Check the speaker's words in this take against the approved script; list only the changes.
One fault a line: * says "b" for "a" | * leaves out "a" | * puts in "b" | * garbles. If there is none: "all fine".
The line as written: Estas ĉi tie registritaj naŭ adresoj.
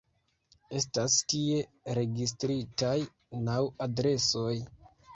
* leaves out "ĉi"